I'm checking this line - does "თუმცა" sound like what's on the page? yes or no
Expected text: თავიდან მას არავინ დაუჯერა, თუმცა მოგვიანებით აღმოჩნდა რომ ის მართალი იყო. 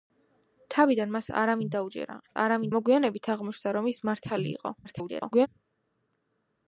no